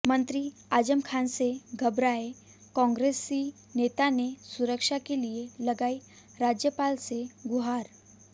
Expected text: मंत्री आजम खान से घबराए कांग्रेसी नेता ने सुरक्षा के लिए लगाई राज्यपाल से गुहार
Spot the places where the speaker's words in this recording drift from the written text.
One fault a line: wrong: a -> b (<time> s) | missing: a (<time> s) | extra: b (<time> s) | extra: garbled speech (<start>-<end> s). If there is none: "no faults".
no faults